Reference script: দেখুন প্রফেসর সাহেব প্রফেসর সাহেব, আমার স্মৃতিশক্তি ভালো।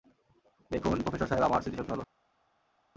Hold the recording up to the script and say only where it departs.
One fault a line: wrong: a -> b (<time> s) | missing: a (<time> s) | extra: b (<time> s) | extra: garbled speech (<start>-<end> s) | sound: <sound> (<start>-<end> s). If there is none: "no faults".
missing: প্রফেসর সাহেব (1.4 s)